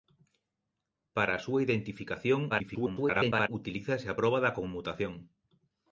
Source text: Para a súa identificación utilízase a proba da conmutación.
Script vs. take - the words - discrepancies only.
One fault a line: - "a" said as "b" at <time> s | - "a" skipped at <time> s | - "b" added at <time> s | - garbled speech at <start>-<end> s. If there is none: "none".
- garbled speech at 2.5-3.5 s